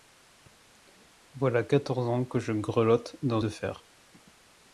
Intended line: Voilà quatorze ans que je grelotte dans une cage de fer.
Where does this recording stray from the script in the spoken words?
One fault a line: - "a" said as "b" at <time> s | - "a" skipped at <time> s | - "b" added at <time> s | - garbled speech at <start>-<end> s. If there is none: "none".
- "une cage" skipped at 3.4 s